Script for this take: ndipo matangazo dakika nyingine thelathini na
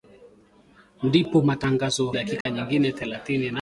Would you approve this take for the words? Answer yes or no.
yes